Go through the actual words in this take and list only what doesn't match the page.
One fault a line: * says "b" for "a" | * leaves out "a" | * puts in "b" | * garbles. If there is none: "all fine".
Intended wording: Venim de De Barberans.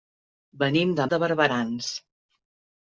all fine